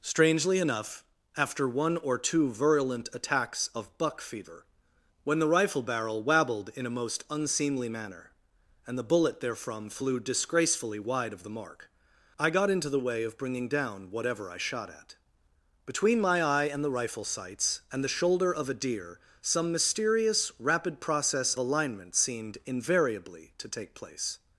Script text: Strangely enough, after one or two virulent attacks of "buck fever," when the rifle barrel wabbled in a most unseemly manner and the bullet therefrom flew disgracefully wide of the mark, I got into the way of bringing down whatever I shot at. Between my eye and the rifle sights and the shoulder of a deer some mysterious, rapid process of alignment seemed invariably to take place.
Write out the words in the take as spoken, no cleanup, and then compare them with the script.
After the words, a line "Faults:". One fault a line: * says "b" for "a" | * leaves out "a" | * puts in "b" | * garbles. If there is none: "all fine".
Strangely enough, after one or two virulent attacks of "buck fever," when the rifle barrel wabbled in a most unseemly manner and the bullet therefrom flew disgracefully wide of the mark, I got into the way of bringing down whatever I shot at. Between my eye and the rifle sights and the shoulder of a deer some mysterious, rapid process alignment seemed invariably to take place.
Faults:
* leaves out "of"